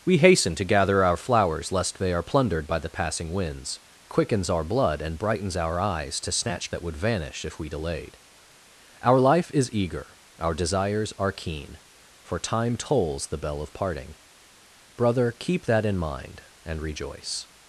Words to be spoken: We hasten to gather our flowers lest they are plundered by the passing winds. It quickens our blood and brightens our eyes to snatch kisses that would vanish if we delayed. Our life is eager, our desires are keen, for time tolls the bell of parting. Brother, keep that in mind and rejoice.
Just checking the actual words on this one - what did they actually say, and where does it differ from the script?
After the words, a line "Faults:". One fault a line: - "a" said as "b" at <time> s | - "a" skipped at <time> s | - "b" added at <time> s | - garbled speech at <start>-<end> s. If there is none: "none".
We hasten to gather our flowers lest they are plundered by the passing winds. Quickens our blood and brightens our eyes to snatch that would vanish if we delayed. Our life is eager, our desires are keen, for time tolls the bell of parting. Brother, keep that in mind and rejoice.
Faults:
- "It" skipped at 3.8 s
- "kisses" skipped at 6.7 s